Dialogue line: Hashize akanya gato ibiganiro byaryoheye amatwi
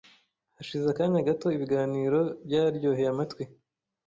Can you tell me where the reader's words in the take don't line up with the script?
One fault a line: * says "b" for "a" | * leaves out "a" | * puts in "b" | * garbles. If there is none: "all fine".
all fine